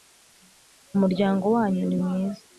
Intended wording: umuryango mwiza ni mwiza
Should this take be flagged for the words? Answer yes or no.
yes